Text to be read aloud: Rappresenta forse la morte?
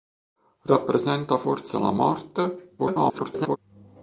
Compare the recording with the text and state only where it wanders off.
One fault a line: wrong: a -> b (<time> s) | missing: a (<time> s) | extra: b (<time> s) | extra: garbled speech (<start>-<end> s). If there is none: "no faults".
extra: garbled speech (2.8-3.6 s)